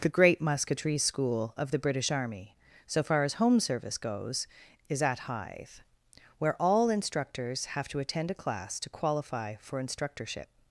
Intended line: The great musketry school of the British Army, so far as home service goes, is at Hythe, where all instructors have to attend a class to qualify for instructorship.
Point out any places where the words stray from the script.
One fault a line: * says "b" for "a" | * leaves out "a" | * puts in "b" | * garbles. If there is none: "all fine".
all fine